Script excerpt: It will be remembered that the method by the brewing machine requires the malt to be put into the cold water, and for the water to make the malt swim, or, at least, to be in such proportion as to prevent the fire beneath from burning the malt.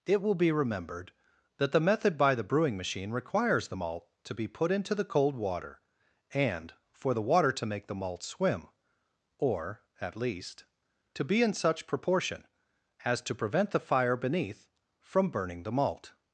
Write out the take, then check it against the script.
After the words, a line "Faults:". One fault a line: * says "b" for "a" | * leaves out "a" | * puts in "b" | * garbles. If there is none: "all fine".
It will be remembered that the method by the brewing machine requires the malt to be put into the cold water, and for the water to make the malt swim, or, at least, to be in such proportion as to prevent the fire beneath from burning the malt.
Faults:
all fine